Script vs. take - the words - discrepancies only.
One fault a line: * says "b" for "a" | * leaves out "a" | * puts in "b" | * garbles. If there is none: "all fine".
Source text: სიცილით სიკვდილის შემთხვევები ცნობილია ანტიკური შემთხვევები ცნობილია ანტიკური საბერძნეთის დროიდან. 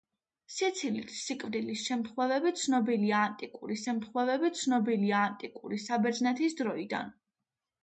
all fine